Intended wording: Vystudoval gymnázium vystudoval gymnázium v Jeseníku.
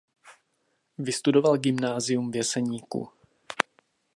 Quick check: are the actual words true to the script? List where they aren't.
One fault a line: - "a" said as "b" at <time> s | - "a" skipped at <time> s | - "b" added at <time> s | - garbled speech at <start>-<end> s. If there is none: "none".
- "vystudoval gymnázium" skipped at 2.3 s